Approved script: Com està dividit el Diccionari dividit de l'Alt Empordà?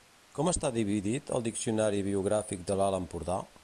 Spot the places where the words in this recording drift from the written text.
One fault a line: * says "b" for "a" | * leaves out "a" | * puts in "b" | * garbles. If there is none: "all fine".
* says "biogràfic" for "dividit"